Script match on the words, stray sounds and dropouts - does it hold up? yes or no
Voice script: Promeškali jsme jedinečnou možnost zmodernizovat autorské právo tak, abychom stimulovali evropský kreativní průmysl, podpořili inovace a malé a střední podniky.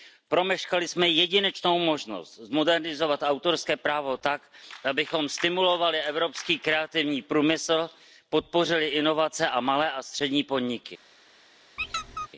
no